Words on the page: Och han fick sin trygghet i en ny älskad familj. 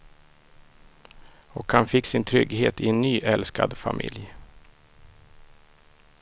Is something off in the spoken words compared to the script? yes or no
no